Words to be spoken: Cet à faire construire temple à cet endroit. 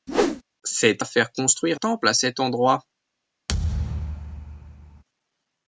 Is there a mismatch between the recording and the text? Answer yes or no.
no